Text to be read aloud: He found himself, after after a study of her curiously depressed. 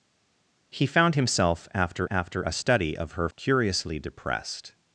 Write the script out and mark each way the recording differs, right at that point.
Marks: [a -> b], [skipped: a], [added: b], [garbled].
He found himself, after after a study of her curiously depressed.